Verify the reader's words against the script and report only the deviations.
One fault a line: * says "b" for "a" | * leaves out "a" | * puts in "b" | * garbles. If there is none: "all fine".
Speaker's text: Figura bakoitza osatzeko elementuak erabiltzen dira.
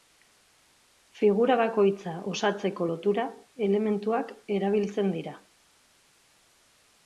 * puts in "lotura"